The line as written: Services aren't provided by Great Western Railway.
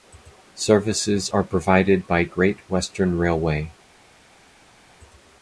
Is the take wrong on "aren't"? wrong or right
wrong